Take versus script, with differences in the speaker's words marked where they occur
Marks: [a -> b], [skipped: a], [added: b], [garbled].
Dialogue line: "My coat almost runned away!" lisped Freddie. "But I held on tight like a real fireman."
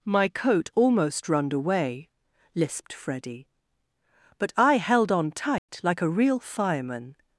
"My coat almost runned away!" lisped Freddie. "But I held on tight like a real fireman."